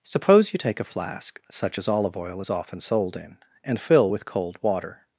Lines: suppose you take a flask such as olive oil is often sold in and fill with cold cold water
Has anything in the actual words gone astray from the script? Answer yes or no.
yes